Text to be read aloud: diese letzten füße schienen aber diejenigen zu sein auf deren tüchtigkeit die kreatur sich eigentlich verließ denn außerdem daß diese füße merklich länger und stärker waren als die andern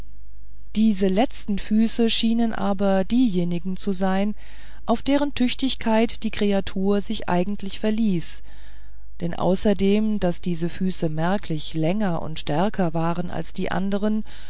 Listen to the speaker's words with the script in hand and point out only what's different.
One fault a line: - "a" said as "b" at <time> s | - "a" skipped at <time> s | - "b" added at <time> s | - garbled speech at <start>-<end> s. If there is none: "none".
none